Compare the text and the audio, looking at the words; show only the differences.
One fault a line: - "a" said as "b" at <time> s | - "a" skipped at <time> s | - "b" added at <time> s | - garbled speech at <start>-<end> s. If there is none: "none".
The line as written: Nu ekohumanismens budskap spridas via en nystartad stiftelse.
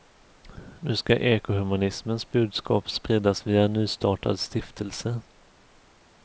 - "ska" added at 0.9 s